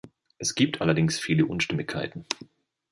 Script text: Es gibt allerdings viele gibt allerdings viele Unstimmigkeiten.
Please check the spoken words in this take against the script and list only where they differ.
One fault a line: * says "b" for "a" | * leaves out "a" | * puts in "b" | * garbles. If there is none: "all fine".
* leaves out "gibt allerdings viele"